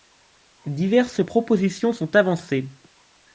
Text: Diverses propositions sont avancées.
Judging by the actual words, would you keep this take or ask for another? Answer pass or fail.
pass